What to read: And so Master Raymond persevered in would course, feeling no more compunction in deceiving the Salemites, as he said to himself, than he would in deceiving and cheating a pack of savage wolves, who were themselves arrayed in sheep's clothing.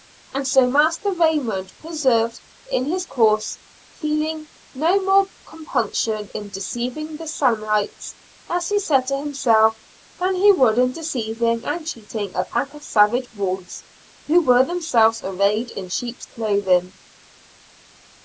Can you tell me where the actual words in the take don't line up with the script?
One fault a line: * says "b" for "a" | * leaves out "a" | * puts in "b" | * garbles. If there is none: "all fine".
* says "his" for "would"